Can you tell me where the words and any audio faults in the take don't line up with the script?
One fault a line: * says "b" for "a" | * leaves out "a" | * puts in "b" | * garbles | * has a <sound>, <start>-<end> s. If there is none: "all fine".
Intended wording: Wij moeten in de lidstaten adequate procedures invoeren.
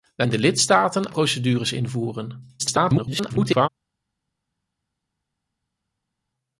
* leaves out "moeten"
* leaves out "adequate"
* garbles